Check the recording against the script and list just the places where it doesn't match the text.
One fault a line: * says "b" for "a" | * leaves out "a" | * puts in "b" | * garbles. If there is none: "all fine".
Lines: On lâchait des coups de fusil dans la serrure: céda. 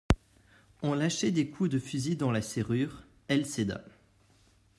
* puts in "elle"